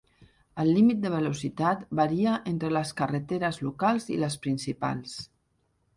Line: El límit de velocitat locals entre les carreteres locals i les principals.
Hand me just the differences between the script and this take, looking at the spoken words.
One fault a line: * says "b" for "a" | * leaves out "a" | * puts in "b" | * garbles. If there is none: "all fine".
* says "varia" for "locals"